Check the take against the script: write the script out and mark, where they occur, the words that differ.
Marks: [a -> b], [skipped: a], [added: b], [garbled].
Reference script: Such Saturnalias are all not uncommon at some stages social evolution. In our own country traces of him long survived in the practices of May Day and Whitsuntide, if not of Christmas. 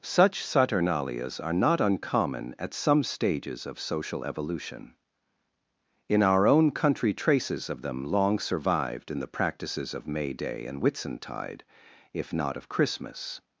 Such Saturnalias are [skipped: all] not uncommon at some stages [added: of] social evolution. In our own country traces of [him -> them] long survived in the practices of May Day and Whitsuntide, if not of Christmas.